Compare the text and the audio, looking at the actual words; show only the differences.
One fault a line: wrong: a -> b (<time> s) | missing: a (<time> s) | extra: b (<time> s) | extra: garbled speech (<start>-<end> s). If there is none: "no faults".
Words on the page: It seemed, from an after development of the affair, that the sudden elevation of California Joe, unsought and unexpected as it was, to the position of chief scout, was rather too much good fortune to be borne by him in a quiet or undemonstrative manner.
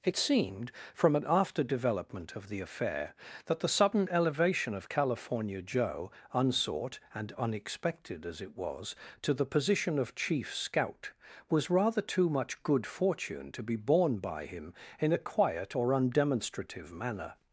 no faults